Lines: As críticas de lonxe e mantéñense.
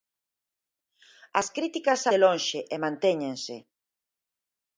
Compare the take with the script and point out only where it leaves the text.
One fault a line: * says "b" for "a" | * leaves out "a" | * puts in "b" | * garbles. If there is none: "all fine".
all fine